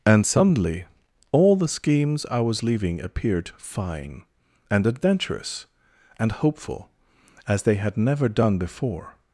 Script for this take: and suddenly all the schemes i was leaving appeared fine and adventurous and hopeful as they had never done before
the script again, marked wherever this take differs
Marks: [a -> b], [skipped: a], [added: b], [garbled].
and suddenly all the schemes i was leaving appeared fine and adventurous and hopeful as they had never done before